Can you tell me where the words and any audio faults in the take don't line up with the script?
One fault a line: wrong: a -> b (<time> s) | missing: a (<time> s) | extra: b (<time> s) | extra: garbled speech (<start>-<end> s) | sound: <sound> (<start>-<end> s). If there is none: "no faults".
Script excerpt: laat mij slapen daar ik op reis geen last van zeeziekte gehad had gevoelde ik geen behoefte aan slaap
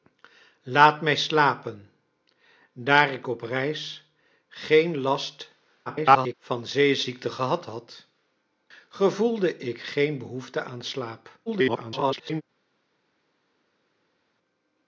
extra: garbled speech (5.9-6.3 s)
extra: garbled speech (11.5-12.4 s)